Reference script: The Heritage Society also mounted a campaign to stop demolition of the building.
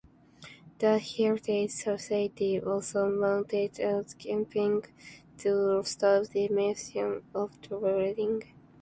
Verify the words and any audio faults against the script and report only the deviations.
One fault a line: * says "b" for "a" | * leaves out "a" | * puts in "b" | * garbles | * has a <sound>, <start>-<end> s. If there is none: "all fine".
all fine